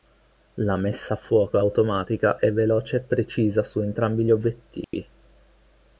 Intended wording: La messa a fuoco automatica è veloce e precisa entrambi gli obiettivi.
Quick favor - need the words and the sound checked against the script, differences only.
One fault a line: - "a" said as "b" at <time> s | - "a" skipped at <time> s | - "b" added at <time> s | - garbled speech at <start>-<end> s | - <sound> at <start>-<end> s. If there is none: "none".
- "su" added at 3.6 s
- dropout at 4.8-4.9 s